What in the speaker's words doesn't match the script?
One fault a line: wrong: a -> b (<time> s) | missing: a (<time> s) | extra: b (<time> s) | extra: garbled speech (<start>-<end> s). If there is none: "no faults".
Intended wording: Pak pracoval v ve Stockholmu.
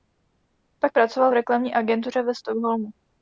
extra: reklamní agentuře (1.3 s)